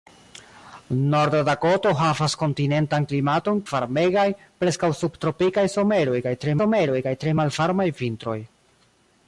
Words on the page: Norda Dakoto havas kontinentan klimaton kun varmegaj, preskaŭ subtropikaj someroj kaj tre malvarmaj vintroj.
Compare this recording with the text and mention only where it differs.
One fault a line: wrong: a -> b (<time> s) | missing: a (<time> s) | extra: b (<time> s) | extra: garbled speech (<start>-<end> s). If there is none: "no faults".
missing: kun (3.6 s)
extra: someroj kaj tre (6.6 s)